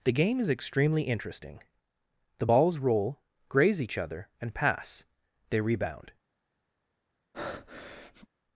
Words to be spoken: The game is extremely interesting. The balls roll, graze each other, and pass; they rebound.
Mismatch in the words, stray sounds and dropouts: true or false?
true